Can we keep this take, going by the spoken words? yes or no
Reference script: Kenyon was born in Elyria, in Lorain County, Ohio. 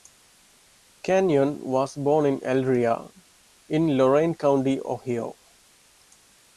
yes